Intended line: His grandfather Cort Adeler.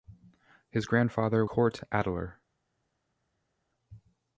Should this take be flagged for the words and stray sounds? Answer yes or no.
no